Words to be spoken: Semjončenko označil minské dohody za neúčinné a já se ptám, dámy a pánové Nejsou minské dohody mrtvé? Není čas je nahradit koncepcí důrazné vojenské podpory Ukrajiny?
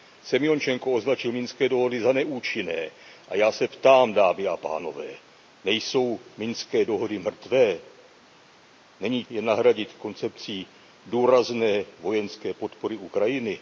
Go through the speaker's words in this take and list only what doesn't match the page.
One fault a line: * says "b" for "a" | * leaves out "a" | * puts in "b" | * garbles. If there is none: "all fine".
* leaves out "čas"